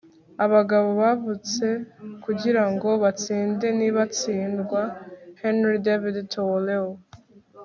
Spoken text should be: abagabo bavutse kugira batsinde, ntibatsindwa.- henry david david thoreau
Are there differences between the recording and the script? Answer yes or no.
yes